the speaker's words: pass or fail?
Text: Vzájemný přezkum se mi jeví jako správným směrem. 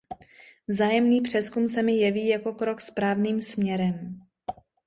fail